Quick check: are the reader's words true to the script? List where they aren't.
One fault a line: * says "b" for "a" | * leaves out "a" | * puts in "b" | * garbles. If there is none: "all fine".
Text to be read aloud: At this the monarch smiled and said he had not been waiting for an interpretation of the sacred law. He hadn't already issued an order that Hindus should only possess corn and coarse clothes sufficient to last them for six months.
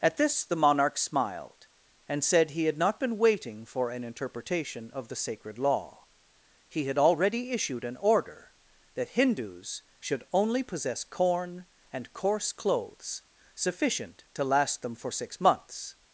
* says "had" for "hadn't"